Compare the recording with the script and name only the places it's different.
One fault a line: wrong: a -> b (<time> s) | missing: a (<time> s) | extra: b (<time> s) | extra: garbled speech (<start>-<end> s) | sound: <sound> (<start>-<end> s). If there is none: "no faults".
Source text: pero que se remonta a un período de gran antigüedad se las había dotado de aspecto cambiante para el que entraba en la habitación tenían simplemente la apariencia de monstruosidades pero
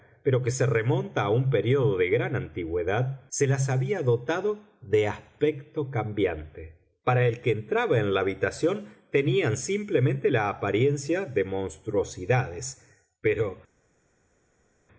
no faults